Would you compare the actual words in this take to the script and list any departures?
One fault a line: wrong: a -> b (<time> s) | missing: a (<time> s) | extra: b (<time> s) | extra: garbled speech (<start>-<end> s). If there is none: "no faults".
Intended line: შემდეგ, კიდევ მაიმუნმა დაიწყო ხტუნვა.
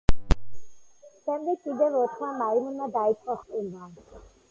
extra: ოთხმა (2.0 s)